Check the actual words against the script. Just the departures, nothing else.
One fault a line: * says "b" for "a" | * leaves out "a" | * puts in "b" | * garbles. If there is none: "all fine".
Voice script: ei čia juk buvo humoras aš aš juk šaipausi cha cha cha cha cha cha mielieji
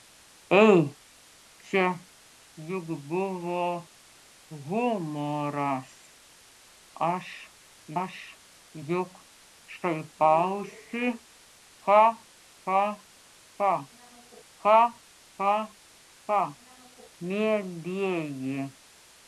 all fine